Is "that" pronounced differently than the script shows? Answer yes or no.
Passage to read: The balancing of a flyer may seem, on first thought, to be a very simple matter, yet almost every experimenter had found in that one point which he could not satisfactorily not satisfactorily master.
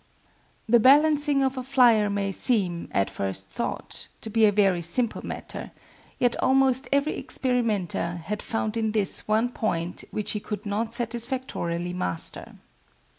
yes